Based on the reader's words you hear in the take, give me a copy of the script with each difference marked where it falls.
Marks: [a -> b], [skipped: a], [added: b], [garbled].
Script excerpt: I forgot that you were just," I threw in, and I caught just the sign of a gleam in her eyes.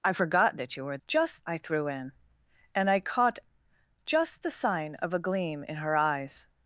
I forgot that you were just," I threw in, and I caught just the sign of a gleam in her eyes.